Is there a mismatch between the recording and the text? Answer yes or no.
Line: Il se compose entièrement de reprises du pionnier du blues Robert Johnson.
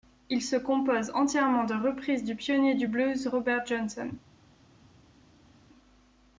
no